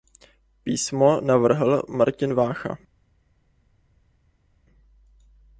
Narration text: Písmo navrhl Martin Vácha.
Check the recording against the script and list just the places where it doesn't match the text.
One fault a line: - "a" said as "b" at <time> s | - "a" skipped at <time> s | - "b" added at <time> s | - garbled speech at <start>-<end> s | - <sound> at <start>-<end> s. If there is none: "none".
none